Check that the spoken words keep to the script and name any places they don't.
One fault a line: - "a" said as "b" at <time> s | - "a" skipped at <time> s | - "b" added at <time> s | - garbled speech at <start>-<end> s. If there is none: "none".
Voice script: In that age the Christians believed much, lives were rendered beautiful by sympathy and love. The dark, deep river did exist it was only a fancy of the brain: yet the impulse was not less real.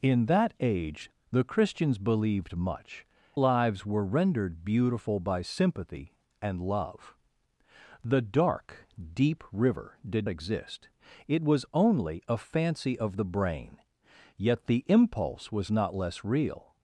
none